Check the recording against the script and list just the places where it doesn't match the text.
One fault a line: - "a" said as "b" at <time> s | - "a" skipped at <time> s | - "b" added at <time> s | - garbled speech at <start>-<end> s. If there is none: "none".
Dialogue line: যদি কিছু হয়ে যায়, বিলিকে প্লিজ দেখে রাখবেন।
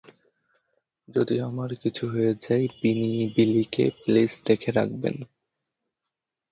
- "আমার" added at 1.4 s